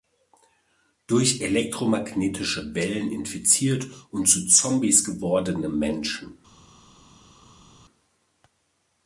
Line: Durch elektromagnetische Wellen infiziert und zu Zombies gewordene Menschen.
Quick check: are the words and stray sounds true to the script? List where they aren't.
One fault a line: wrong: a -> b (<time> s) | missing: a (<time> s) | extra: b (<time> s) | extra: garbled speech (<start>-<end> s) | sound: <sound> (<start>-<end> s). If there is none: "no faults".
no faults